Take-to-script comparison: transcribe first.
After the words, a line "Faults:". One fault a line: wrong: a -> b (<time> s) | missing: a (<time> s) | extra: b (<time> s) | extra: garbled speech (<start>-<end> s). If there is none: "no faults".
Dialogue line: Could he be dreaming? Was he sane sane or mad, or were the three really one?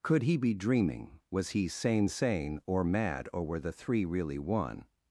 Could he be dreaming? Was he sane sane or mad, or were the three really one?
Faults:
no faults